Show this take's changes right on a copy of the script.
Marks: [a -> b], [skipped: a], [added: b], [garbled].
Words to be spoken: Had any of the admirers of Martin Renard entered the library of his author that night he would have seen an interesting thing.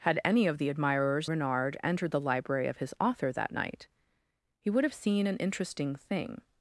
Had any of the admirers [skipped: of Martin] Renard entered the library of his author that night he would have seen an interesting thing.